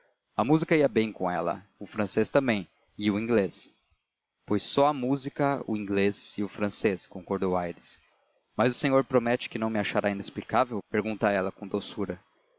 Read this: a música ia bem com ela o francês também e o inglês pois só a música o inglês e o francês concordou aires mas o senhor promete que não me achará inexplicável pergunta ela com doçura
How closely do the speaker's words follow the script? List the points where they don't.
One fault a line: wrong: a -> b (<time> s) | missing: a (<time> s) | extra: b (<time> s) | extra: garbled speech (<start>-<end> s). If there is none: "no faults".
no faults